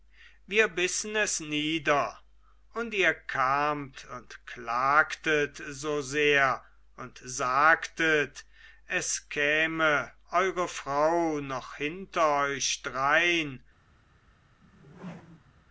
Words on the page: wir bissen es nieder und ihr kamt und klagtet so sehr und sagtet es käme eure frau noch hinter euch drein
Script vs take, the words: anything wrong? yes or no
no